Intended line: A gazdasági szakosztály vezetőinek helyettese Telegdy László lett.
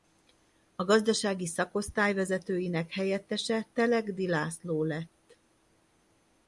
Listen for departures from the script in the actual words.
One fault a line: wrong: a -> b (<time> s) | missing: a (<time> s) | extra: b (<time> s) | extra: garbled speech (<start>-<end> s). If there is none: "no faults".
no faults